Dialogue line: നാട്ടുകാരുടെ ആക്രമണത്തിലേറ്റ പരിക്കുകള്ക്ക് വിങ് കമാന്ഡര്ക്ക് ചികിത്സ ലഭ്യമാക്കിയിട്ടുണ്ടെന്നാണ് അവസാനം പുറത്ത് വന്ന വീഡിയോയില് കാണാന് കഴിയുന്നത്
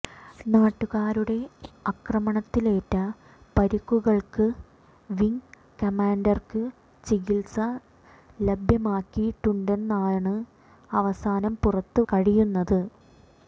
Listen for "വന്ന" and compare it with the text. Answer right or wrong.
wrong